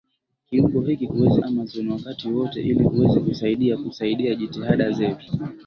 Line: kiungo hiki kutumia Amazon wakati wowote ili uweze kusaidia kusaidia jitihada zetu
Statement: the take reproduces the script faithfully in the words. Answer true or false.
false